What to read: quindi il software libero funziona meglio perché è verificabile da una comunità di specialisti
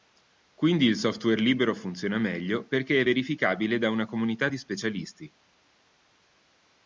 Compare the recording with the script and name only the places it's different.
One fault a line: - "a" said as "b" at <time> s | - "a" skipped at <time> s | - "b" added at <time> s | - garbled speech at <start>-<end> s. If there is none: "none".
none